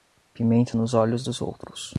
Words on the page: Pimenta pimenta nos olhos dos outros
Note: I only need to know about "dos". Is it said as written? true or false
true